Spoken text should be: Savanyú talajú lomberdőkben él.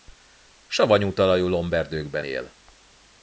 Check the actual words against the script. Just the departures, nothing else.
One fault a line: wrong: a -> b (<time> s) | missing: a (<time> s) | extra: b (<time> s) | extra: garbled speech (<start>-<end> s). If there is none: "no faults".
no faults